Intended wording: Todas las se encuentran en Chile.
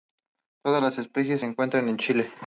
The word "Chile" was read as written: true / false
true